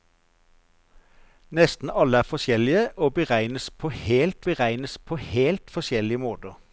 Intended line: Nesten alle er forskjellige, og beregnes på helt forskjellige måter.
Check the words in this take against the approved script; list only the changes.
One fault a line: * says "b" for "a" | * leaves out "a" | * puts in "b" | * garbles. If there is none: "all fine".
* puts in "beregnes på helt"